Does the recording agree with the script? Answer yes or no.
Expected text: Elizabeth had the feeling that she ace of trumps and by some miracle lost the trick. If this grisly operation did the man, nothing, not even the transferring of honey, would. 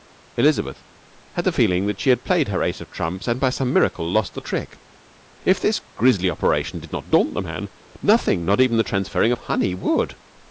no